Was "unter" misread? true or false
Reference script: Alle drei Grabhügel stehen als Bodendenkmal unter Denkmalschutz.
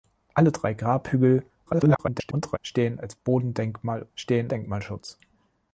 true